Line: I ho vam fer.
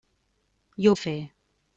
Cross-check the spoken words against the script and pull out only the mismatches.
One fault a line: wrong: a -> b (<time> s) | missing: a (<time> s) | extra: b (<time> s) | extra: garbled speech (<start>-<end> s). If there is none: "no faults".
missing: vam (0.9 s)